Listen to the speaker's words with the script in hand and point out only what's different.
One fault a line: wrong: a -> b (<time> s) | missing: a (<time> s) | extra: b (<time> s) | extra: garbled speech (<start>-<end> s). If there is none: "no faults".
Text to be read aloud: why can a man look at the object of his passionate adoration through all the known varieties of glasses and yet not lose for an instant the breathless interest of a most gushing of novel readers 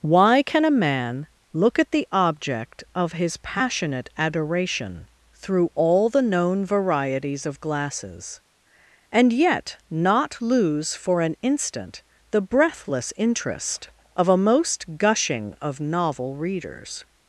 no faults